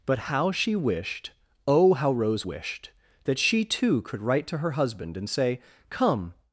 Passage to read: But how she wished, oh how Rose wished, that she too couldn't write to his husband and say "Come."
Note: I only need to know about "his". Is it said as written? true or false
false